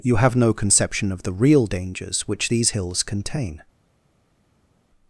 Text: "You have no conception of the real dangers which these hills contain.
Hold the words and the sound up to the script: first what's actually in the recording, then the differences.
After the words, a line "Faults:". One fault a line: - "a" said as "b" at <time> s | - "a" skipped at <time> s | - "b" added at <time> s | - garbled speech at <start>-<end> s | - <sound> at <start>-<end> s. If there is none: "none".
"You have no conception of the real dangers which these hills contain.
Faults:
none